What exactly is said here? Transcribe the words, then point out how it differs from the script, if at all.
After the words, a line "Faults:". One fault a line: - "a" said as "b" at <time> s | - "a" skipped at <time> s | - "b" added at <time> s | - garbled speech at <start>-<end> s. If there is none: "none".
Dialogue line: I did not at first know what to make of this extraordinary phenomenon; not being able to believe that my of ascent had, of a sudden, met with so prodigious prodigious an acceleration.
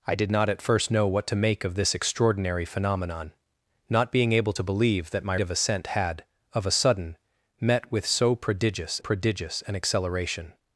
I did not at first know what to make of this extraordinary phenomenon; not being able to believe that my of ascent had, of a sudden, met with so prodigious prodigious an acceleration.
Faults:
none